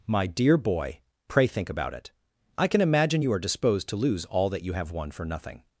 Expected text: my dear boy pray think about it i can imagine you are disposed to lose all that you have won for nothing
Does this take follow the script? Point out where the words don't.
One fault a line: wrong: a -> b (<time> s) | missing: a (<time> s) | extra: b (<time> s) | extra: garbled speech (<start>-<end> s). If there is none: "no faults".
no faults